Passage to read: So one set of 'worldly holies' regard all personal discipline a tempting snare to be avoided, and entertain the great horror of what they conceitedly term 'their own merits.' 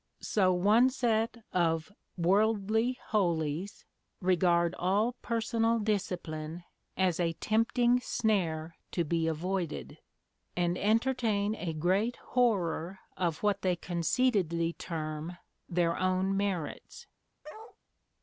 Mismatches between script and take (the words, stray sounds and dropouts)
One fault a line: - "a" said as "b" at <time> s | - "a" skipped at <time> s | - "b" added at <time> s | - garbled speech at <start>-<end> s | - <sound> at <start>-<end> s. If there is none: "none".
- "as" added at 7.0 s
- "the" said as "a" at 11.5 s
- bark at 17.4-17.8 s